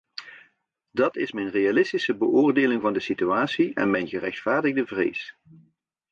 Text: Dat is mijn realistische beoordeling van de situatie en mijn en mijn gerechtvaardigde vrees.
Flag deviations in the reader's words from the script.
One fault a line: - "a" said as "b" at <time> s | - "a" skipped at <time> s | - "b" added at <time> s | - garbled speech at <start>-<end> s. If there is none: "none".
- "en mijn" skipped at 4.1 s